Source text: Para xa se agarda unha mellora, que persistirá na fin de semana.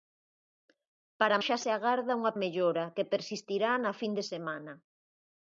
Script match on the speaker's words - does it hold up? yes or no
yes